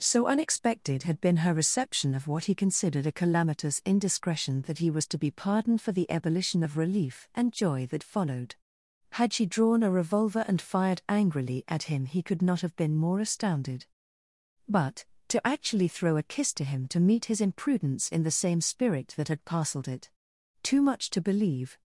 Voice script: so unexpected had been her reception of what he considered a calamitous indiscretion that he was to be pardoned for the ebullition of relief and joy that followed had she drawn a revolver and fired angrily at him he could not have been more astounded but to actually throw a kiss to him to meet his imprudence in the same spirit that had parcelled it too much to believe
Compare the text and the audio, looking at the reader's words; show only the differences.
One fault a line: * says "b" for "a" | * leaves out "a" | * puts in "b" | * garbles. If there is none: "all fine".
all fine